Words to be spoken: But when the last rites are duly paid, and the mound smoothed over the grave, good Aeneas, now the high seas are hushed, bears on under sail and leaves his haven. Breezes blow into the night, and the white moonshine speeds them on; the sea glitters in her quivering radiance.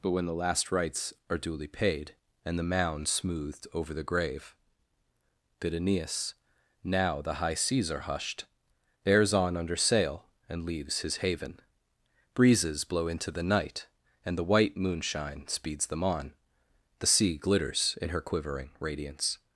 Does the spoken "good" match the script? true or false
false